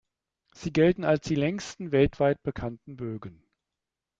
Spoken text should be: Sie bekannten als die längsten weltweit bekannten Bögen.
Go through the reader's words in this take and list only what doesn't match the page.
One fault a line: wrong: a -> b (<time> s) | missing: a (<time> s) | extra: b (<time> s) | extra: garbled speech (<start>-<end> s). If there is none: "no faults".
wrong: bekannten -> gelten (0.7 s)